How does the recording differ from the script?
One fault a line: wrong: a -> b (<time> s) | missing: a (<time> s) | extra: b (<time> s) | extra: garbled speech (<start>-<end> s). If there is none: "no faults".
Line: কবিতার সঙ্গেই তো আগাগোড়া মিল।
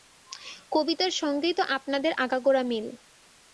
extra: আপনাদের (1.8 s)